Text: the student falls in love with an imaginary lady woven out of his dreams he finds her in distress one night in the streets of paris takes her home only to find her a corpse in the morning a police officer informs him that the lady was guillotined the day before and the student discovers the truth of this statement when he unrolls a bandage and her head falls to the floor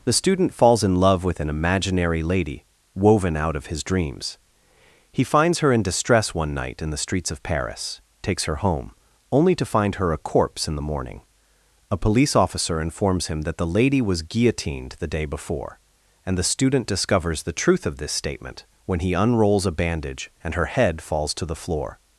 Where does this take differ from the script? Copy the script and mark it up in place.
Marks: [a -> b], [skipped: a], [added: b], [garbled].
the student falls in love with an imaginary lady woven out of his dreams he finds her in distress one night in the streets of paris takes her home only to find her a corpse in the morning a police officer informs him that the lady was guillotined the day before and the student discovers the truth of this statement when he unrolls a bandage and her head falls to the floor